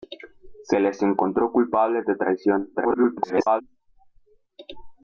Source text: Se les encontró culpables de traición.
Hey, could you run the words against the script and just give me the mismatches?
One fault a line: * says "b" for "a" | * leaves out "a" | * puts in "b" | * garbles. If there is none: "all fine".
* garbles